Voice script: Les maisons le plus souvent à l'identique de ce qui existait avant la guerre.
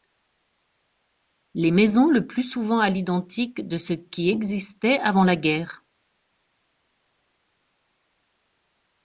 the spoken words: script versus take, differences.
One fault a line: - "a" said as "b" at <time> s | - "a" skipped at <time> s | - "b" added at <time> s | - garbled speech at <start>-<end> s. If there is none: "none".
none